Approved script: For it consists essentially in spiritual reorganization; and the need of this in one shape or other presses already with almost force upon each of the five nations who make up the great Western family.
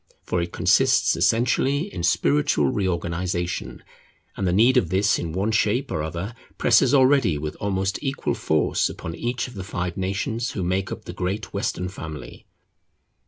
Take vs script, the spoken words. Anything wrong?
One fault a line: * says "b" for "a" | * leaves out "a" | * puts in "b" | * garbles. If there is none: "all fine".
* puts in "equal"